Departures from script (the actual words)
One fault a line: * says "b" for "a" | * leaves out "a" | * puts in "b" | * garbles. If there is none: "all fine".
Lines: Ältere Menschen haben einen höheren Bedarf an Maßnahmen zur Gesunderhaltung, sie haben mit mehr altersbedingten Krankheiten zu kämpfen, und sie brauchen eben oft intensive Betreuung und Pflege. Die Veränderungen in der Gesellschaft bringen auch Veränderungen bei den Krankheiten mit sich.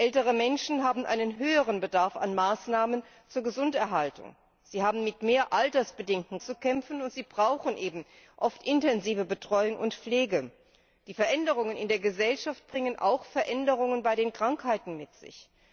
* leaves out "Krankheiten"